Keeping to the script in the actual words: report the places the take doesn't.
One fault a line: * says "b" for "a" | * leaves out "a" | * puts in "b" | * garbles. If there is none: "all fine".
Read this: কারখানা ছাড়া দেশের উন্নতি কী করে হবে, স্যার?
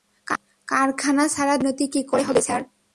all fine